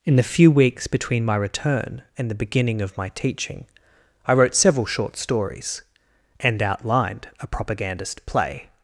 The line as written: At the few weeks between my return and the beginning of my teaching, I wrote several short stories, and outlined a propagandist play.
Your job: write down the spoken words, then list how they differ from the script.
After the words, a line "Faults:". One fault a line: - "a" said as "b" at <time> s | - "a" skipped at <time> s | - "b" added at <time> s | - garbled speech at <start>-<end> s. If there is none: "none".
In the few weeks between my return and the beginning of my teaching, I wrote several short stories, and outlined a propagandist play.
Faults:
- "At" said as "In" at 0.0 s